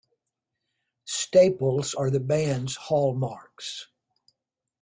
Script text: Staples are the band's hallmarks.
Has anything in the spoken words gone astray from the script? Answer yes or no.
no